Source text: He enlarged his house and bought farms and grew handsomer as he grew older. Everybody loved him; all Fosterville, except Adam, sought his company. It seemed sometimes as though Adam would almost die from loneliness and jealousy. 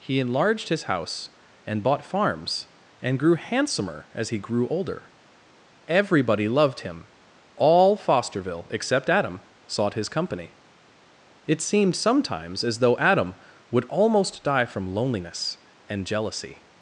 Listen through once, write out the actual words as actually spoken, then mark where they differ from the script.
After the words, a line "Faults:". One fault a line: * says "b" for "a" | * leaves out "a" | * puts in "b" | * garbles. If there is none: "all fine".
He enlarged his house and bought farms and grew handsomer as he grew older. Everybody loved him; all Fosterville, except Adam, sought his company. It seemed sometimes as though Adam would almost die from loneliness and jealousy.
Faults:
all fine